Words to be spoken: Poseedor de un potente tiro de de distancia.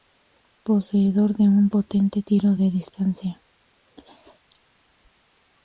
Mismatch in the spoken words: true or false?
true